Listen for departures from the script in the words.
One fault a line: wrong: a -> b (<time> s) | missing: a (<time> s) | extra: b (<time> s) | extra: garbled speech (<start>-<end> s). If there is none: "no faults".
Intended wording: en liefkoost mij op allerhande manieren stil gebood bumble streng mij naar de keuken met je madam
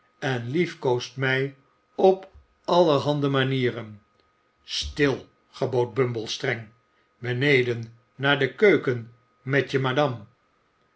wrong: mij -> beneden (7.2 s)